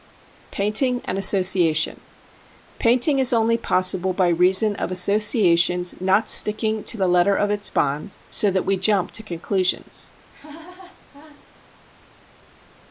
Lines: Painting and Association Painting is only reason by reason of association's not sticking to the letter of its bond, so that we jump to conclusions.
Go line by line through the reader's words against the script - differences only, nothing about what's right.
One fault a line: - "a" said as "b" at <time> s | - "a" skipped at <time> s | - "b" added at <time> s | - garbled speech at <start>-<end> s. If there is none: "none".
- "reason" said as "possible" at 3.5 s